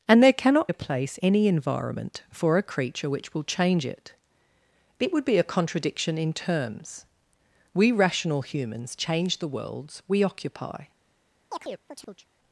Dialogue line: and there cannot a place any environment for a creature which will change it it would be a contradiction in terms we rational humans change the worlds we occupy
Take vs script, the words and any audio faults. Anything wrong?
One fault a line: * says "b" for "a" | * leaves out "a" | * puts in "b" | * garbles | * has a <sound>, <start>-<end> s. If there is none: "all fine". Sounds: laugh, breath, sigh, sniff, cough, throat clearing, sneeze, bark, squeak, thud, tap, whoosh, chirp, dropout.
* has a chirp, 11.5-12.3 s